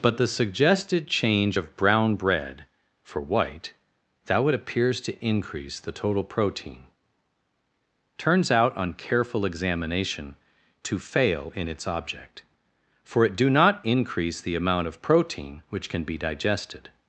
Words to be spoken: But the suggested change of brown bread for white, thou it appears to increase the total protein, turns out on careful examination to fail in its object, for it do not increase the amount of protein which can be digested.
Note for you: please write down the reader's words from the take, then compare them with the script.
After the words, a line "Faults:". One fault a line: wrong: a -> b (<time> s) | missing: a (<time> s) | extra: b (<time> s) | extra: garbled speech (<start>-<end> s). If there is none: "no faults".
But the suggested change of brown bread for white, thou it appears to increase the total protein, turns out on careful examination to fail in its object, for it do not increase the amount of protein which can be digested.
Faults:
no faults